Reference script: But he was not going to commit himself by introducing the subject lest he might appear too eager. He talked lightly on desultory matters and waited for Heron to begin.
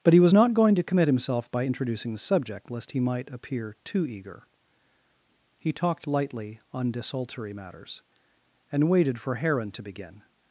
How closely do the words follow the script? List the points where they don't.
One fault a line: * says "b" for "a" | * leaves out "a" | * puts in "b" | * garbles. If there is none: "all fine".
all fine